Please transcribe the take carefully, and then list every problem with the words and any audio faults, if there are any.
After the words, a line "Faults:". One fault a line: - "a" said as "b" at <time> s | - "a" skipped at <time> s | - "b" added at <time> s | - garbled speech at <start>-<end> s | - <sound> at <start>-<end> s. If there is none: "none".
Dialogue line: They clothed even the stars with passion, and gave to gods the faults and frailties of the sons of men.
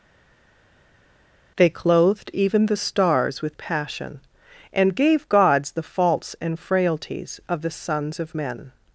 They clothed even the stars with passion, and gave gods the faults and frailties of the sons of men.
Faults:
- "to" skipped at 5.3 s